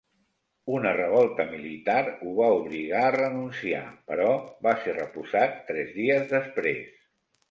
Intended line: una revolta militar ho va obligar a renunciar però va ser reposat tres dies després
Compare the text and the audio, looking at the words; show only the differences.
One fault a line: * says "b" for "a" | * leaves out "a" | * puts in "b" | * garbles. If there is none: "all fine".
all fine